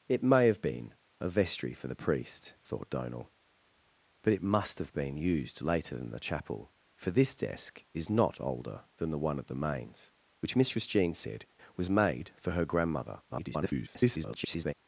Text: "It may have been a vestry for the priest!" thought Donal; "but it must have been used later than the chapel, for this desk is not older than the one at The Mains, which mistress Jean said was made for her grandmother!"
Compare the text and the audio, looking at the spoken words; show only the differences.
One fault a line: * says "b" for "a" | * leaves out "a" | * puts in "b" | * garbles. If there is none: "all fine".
* garbles